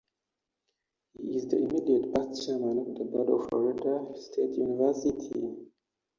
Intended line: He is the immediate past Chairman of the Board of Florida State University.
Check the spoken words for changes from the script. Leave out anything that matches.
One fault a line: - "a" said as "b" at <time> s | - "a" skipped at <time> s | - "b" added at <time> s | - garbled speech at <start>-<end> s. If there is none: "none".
none